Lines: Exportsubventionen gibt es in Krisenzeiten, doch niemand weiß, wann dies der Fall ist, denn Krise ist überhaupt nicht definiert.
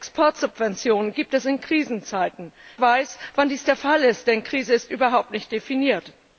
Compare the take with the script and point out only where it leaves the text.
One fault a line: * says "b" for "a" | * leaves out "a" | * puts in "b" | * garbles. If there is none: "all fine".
* leaves out "doch niemand"